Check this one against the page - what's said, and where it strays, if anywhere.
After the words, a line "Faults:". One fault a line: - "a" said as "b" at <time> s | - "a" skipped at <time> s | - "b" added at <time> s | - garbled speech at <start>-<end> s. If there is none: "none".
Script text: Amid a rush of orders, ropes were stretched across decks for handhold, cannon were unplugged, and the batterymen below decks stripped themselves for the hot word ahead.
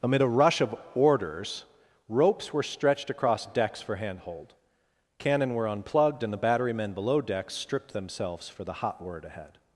Amid a rush of orders, ropes were stretched across decks for handhold, cannon were unplugged, and the batterymen below decks stripped themselves for the hot word ahead.
Faults:
none